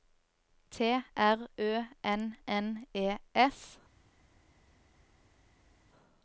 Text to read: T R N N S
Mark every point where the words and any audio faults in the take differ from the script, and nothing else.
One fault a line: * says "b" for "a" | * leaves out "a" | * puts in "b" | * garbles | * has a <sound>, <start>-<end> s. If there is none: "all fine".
* puts in "Ø"
* puts in "E"